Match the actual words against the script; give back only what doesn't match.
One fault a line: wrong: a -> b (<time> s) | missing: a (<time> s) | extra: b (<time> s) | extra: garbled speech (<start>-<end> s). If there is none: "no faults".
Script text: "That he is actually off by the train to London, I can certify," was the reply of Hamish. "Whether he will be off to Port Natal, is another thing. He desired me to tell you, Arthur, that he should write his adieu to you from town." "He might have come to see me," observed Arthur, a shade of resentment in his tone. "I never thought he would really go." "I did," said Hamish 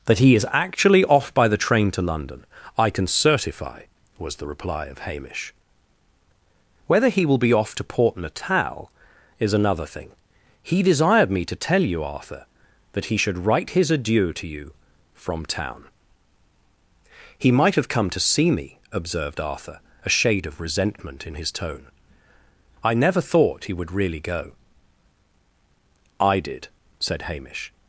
no faults